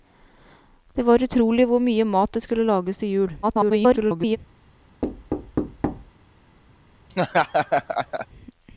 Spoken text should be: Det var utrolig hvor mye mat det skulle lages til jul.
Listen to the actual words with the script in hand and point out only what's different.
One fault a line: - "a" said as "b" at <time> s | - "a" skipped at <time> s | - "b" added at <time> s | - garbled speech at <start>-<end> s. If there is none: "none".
- garbled speech at 3.4-4.4 s